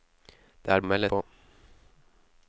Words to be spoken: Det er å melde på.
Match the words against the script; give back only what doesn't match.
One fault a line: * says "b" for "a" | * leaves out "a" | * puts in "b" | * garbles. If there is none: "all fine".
all fine